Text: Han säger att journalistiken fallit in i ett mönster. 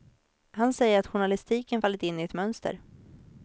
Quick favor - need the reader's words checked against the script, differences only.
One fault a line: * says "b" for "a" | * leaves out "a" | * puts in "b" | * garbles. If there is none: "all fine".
all fine